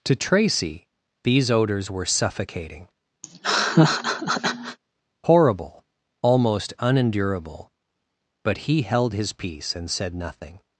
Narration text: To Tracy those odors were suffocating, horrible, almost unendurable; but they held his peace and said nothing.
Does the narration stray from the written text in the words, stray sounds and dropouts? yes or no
yes